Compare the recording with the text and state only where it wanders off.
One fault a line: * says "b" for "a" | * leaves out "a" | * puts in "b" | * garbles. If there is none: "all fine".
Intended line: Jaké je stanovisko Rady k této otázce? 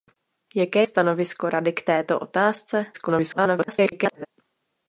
* leaves out "je"
* garbles